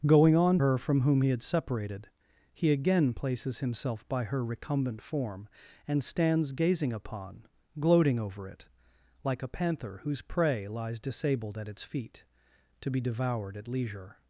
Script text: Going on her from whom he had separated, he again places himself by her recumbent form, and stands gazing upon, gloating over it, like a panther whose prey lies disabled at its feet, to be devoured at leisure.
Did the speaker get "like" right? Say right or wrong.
right